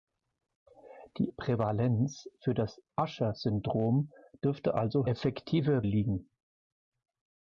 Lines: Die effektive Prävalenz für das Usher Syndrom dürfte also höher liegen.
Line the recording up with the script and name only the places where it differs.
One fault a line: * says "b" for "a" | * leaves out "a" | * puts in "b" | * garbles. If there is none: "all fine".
* leaves out "effektive"
* says "effektive" for "höher"